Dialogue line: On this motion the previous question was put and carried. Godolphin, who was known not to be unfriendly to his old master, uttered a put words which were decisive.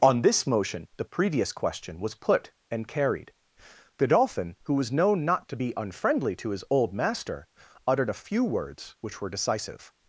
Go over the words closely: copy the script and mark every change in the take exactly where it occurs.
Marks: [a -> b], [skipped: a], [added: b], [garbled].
On this motion the previous question was put and carried. Godolphin, who was known not to be unfriendly to his old master, uttered a [put -> few] words which were decisive.